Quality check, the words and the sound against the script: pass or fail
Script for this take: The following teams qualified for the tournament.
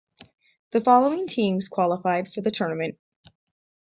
pass